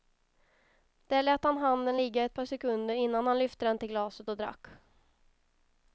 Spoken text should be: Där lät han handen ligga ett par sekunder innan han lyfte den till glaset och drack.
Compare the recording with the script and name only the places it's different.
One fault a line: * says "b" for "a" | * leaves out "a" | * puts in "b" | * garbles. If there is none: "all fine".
all fine